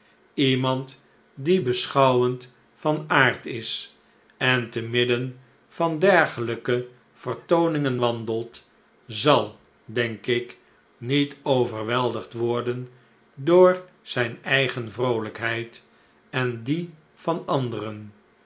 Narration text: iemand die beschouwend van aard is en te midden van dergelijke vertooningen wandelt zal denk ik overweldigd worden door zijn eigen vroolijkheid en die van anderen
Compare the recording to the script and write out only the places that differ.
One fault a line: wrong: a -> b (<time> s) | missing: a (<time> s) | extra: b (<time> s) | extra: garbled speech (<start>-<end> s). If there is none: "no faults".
extra: niet (11.0 s)